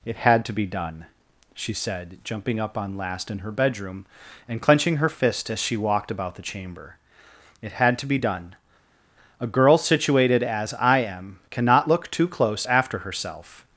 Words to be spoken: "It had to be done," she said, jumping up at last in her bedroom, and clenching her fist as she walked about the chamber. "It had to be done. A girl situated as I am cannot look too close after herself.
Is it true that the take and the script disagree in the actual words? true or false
true